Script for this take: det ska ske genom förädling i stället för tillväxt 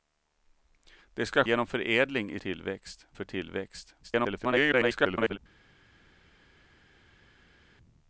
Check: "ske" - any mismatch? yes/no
yes